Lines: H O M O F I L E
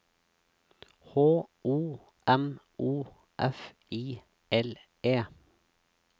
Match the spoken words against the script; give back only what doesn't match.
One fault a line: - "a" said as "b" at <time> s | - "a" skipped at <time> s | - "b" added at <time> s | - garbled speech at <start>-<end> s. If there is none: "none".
none